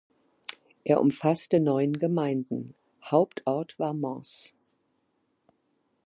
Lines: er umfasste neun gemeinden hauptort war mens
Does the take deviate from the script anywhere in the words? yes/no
no